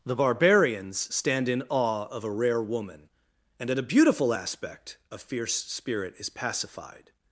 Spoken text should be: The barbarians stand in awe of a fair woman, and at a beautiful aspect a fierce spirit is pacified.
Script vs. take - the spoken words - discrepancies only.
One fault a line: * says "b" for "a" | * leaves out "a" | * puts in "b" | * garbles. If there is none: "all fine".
* says "rare" for "fair"